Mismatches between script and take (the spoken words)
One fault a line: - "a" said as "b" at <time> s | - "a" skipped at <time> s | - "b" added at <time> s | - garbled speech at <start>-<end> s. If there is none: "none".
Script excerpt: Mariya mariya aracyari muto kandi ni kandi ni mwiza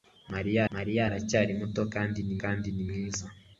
none